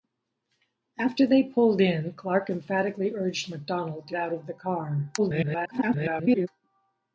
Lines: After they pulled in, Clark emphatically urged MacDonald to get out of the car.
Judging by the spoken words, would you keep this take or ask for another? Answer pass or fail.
fail